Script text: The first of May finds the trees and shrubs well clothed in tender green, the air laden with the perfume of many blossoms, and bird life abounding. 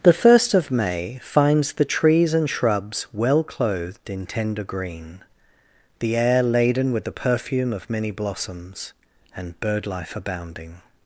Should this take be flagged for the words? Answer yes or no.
no